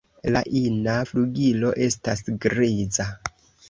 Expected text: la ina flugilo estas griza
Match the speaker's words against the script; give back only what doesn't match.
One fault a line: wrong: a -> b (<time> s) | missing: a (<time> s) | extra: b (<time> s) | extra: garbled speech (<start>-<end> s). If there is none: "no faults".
no faults